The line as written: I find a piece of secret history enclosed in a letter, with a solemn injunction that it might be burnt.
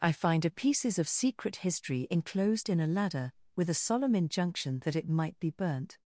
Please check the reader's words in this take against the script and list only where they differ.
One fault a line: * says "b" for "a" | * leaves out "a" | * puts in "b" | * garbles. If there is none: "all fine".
* says "pieces" for "piece"
* says "ladder" for "letter"